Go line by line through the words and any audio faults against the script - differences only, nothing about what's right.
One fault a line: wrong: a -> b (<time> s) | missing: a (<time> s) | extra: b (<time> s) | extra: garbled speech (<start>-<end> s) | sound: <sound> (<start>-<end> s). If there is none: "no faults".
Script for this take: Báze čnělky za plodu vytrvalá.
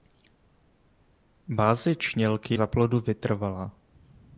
no faults